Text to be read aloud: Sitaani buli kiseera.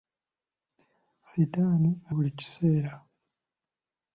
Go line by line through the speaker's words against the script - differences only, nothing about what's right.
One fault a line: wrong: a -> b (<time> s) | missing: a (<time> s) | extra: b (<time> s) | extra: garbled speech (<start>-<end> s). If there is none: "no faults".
no faults